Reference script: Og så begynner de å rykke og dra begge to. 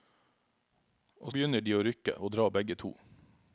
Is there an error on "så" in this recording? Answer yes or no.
yes